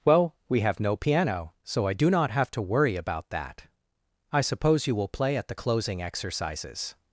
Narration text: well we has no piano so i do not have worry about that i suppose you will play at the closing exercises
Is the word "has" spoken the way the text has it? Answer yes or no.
no